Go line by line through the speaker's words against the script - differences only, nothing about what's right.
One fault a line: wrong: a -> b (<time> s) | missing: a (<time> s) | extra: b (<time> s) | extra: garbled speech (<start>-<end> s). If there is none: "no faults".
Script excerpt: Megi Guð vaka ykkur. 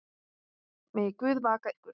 no faults